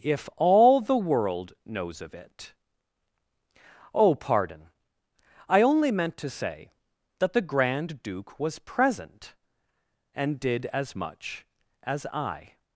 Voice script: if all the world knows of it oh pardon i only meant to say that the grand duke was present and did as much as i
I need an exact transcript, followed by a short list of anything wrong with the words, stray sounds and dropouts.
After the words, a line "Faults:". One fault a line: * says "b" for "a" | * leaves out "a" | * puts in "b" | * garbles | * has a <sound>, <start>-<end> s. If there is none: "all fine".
if all the world knows of it oh pardon i only meant to say that the grand duke was present and did as much as i
Faults:
all fine